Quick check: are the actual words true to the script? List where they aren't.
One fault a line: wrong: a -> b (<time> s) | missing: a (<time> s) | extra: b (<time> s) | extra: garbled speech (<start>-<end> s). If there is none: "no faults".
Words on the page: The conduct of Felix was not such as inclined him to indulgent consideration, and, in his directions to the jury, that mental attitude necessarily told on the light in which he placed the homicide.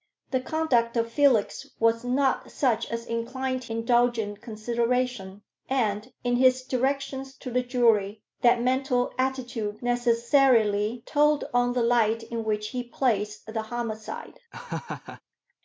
missing: him to (3.6 s)